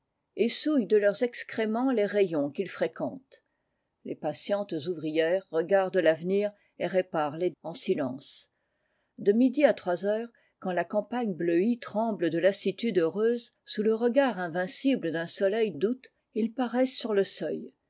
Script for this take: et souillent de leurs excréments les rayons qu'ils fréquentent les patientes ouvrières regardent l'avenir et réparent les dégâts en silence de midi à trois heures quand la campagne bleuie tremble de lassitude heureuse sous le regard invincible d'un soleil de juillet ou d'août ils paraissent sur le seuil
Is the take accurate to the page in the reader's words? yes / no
no